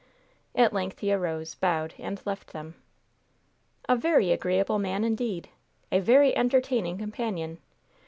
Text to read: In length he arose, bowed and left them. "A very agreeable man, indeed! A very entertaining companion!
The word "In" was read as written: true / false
false